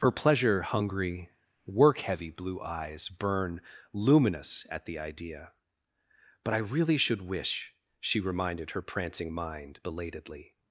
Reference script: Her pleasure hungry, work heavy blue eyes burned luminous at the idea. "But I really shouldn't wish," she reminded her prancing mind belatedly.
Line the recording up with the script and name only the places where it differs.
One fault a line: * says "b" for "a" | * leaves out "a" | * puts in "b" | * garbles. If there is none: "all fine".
* says "burn" for "burned"
* says "should" for "shouldn't"